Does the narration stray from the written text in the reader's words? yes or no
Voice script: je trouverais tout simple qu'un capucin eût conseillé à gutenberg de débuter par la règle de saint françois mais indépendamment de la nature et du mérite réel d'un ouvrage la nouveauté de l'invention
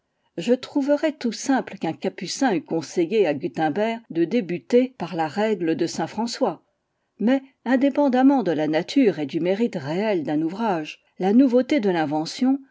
no